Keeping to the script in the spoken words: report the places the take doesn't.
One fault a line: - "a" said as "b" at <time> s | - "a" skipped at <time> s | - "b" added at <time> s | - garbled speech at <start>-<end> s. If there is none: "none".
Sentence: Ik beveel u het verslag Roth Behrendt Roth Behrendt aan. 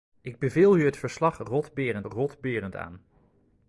none